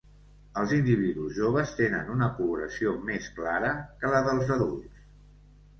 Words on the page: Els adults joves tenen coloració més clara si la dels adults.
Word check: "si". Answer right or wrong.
wrong